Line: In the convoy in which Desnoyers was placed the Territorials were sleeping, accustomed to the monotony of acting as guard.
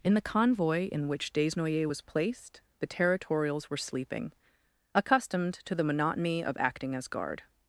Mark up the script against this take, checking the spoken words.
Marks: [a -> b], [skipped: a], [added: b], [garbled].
In the convoy in which Desnoyers was placed the Territorials were sleeping, accustomed to the monotony of acting as guard.